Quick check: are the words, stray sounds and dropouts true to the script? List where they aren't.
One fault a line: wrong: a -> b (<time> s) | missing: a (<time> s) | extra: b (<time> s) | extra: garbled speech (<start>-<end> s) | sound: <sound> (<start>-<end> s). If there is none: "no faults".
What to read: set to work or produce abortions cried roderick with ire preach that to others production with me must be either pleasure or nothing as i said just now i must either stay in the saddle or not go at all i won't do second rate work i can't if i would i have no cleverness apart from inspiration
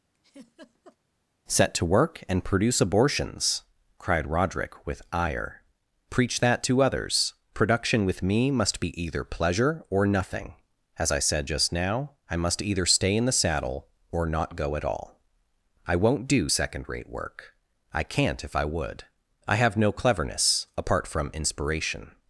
sound: laugh (0.1-1.0 s)
wrong: or -> and (2.3 s)